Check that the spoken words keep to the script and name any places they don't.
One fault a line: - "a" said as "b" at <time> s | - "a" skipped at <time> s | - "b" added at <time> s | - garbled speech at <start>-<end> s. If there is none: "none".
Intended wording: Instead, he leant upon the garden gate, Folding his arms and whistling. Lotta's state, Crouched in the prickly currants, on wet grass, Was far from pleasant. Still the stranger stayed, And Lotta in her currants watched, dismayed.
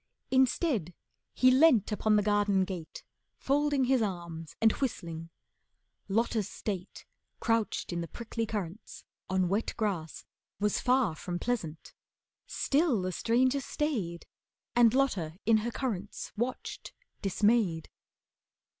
none